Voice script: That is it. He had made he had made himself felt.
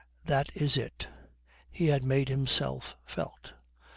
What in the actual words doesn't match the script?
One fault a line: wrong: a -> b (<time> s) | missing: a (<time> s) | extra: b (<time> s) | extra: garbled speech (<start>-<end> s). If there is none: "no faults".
missing: he had made (2.3 s)